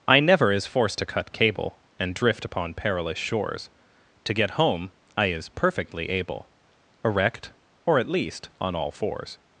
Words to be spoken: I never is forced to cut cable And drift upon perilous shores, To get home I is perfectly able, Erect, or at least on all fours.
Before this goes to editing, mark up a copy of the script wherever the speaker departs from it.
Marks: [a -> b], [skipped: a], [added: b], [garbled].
I never is forced to cut cable And drift upon perilous shores, To get home I is perfectly able, Erect, or at least on all fours.